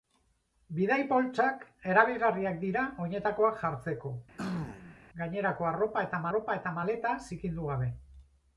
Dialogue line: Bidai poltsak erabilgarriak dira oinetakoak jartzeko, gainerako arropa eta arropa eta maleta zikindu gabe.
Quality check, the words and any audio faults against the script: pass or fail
fail